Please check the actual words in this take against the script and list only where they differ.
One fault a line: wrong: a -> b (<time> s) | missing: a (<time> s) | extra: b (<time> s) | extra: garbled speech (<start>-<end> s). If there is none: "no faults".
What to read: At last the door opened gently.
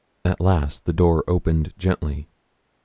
no faults